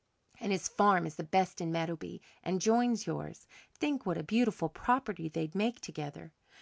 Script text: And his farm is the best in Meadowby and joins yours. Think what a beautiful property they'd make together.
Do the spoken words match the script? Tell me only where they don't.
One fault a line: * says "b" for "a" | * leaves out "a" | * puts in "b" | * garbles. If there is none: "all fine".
all fine